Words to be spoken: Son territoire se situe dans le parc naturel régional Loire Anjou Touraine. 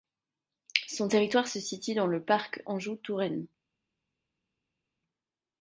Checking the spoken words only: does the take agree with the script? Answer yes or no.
no